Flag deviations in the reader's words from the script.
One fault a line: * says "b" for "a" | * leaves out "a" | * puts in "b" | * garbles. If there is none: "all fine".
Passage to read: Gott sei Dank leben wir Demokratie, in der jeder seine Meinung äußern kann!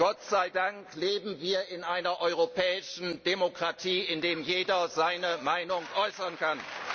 * puts in "in einer europäischen"